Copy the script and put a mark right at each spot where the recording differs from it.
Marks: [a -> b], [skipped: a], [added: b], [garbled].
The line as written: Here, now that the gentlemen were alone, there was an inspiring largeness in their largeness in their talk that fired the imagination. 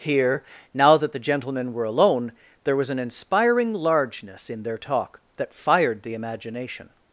Here, now that the gentlemen were alone, there was an inspiring largeness in their [skipped: largeness in their] talk that fired the imagination.